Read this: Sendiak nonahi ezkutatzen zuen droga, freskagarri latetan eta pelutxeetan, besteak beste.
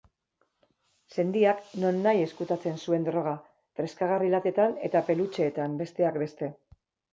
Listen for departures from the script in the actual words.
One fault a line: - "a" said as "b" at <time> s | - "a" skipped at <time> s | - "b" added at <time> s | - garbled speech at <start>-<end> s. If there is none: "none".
none